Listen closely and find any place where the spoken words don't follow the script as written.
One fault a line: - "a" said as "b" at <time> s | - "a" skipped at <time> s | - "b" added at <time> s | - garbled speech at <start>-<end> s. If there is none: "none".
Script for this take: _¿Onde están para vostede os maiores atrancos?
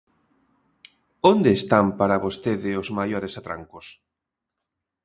none